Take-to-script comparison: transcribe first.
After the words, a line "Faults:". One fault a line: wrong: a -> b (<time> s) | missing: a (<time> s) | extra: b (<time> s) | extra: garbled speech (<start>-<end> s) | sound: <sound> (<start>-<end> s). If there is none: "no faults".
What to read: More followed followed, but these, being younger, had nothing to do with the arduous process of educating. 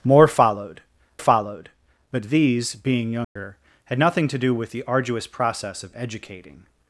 More followed followed, but these, being younger, had nothing to do with the arduous process of educating.
Faults:
sound: dropout (3.2-3.4 s)